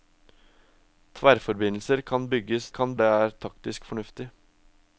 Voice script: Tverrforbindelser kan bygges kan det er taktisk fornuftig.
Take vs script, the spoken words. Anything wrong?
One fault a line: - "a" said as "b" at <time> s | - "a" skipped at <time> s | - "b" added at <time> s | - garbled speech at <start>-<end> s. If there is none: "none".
none